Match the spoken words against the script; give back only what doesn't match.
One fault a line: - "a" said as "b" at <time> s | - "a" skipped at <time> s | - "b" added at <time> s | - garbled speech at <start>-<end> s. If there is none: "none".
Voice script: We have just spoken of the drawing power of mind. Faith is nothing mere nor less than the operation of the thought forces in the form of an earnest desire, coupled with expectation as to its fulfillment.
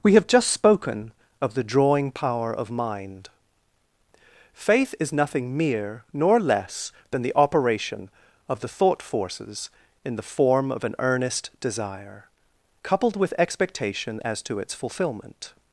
none